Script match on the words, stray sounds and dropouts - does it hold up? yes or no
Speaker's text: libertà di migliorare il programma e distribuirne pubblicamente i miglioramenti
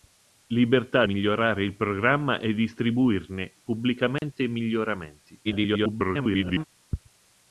no